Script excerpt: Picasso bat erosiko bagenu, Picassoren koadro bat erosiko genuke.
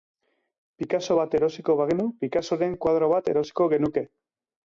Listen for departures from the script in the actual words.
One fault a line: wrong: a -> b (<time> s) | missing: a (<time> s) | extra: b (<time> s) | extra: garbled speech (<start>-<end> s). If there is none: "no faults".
no faults